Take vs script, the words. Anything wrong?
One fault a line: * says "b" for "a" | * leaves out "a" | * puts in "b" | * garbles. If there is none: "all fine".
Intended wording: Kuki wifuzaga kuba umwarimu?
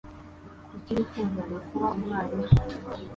all fine